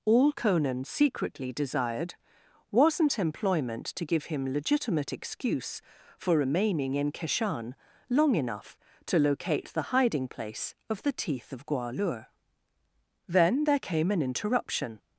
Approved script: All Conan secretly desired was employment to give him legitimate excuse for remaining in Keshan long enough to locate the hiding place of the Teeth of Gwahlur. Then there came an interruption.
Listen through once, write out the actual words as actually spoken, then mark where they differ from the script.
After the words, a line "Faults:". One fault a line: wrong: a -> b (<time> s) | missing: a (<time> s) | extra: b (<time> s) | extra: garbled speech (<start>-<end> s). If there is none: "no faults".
All Conan secretly desired wasn't employment to give him legitimate excuse for remaining in Keshan long enough to locate the hiding place of the Teeth of Gwahlur. Then there came an interruption.
Faults:
wrong: was -> wasn't (2.7 s)